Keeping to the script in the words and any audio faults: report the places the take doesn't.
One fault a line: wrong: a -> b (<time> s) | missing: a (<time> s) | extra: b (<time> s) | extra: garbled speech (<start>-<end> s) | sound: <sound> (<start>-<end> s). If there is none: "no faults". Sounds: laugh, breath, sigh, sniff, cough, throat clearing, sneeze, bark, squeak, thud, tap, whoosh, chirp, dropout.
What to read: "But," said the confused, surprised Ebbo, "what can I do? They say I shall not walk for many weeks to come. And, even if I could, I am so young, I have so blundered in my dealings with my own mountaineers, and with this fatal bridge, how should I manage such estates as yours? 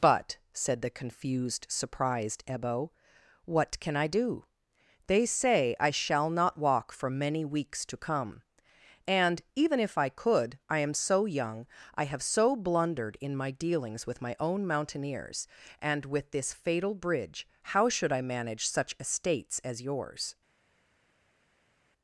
no faults